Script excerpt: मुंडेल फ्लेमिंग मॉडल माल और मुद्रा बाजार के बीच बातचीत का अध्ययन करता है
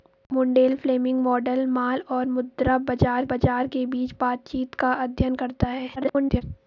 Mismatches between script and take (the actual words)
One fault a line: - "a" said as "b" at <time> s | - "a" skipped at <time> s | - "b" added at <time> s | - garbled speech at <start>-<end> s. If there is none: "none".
- "बाजार" added at 3.3 s
- garbled speech at 6.0-6.4 s